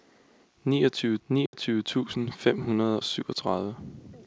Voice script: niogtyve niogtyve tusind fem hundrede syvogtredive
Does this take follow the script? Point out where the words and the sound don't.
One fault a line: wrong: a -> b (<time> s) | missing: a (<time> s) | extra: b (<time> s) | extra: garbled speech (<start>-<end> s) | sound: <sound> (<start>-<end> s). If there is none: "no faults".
sound: dropout (1.5-1.5 s)